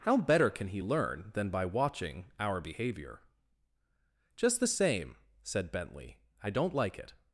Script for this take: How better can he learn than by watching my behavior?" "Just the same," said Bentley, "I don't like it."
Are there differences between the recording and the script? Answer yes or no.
yes